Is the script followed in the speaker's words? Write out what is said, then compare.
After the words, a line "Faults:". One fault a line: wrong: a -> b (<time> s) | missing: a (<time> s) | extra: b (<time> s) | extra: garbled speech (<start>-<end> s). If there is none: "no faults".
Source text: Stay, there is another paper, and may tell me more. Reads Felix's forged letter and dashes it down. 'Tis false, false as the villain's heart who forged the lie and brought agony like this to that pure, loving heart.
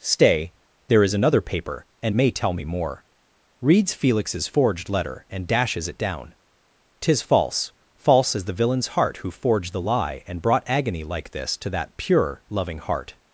Stay, there is another paper, and may tell me more. Reads Felix's forged letter and dashes it down. 'Tis false, false as the villain's heart who forged the lie and brought agony like this to that pure, loving heart.
Faults:
no faults